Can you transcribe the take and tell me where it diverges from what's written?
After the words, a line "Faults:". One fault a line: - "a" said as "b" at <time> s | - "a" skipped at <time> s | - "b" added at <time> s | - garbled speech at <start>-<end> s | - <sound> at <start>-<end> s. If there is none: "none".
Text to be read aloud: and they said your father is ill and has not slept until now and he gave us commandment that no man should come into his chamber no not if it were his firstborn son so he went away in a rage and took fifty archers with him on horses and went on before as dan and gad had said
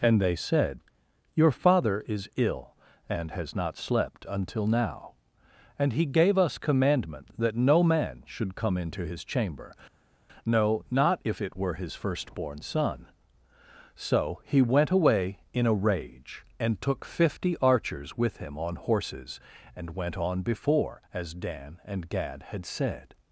and they said your father is ill and has not slept until now and he gave us commandment that no man should come into his chamber no not if it were his firstborn son so he went away in a rage and took fifty archers with him on horses and went on before as dan and gad had said
Faults:
none